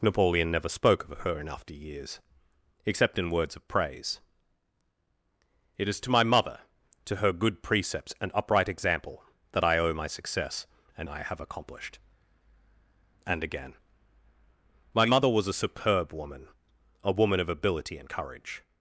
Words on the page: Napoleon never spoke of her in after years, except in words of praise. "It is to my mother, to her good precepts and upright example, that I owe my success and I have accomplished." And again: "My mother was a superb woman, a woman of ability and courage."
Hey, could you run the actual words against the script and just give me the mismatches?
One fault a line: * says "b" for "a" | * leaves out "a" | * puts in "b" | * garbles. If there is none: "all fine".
all fine